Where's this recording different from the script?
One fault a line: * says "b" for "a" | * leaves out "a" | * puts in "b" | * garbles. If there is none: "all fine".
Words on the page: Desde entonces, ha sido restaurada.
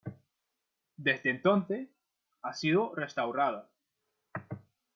all fine